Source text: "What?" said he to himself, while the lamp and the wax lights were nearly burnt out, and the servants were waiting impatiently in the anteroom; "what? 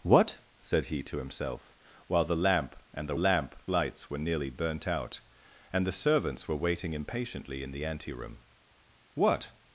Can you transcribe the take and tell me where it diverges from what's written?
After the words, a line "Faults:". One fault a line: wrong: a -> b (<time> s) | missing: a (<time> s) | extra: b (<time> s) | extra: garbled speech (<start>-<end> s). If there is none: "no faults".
"What?" said he to himself, while the lamp and the lamp lights were nearly burnt out, and the servants were waiting impatiently in the anteroom; "what?
Faults:
wrong: wax -> lamp (3.1 s)